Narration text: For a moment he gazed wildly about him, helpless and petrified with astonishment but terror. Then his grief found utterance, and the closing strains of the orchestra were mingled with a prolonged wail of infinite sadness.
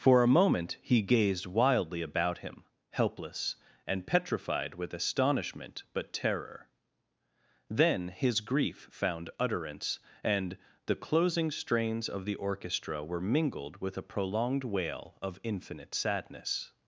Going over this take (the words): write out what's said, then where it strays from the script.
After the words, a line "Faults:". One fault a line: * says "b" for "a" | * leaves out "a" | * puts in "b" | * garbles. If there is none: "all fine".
For a moment he gazed wildly about him, helpless and petrified with astonishment but terror. Then his grief found utterance, and the closing strains of the orchestra were mingled with a prolonged wail of infinite sadness.
Faults:
all fine